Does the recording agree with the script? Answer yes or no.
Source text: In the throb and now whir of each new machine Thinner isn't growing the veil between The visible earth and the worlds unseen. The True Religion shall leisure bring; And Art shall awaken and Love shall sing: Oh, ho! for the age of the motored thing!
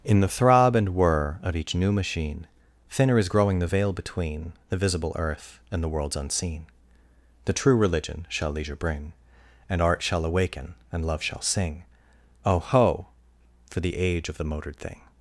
no